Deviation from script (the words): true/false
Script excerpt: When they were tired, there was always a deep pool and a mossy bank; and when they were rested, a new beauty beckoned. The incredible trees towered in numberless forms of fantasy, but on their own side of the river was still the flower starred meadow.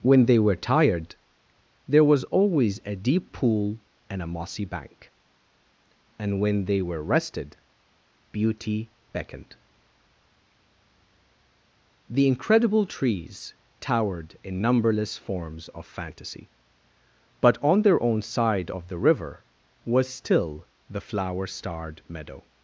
true